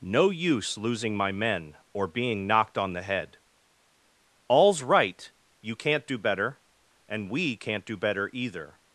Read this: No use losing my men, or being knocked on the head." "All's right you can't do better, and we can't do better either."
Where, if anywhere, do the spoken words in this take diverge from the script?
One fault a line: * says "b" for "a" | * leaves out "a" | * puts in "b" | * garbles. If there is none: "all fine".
all fine